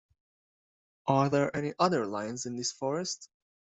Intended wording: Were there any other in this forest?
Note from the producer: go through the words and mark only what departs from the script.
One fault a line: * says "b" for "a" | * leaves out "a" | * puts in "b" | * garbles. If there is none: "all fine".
* says "Are" for "Were"
* puts in "lions"